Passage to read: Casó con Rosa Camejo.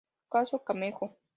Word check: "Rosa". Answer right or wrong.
wrong